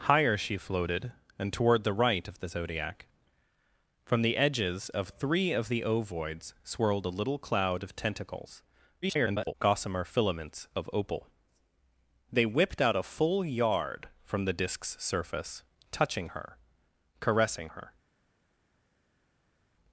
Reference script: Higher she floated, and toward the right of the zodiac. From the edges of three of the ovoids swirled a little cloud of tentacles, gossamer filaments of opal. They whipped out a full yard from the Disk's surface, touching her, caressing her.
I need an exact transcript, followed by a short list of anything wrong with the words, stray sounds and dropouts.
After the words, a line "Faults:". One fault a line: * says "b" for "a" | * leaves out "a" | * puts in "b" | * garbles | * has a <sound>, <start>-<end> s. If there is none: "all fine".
Higher she floated, and toward the right of the zodiac. From the edges of three of the ovoids swirled a little cloud of tentacles, [garbled] gossamer filaments of opal. They whipped out a full yard from the Disk's surface, touching her, caressing her.
Faults:
* garbles